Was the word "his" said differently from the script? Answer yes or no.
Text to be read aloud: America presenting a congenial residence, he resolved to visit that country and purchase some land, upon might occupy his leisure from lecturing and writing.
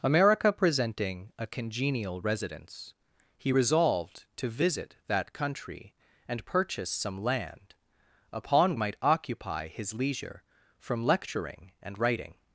no